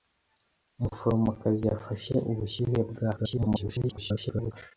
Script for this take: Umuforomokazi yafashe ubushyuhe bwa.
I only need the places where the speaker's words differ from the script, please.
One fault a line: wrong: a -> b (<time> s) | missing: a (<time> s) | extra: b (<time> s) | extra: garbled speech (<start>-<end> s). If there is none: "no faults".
extra: garbled speech (3.2-4.5 s)